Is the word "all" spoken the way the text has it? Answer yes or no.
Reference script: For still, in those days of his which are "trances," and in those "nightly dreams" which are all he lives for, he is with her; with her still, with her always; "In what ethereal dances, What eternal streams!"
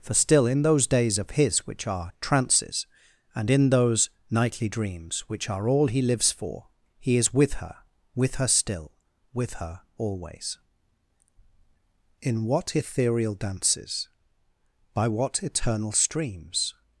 yes